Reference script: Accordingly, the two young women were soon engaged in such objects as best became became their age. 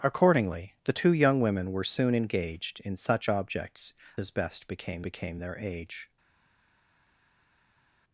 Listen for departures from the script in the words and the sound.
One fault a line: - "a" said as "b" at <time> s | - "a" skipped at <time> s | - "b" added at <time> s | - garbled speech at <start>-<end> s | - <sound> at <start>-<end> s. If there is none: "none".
none